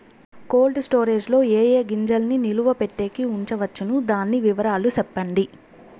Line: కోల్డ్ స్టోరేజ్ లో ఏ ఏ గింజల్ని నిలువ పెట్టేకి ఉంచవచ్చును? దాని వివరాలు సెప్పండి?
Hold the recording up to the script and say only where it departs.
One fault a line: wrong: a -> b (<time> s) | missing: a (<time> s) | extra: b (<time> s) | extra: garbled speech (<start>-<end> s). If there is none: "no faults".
no faults